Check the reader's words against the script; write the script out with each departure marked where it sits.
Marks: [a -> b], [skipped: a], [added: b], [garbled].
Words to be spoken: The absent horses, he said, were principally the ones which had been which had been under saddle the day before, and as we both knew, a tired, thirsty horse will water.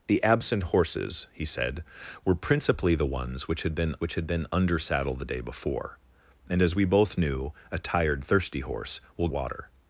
The absent horses, he said, were principally the ones which had been which had been under saddle the day before, and as we both knew, a tired, thirsty horse will water.